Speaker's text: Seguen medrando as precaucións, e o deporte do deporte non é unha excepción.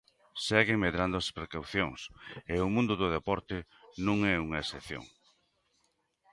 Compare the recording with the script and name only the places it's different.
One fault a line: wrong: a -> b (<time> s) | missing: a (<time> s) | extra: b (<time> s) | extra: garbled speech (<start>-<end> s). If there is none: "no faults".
wrong: deporte -> mundo (2.8 s)